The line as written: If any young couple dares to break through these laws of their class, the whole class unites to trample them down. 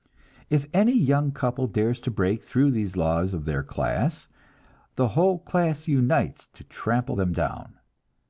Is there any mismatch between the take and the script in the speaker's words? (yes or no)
no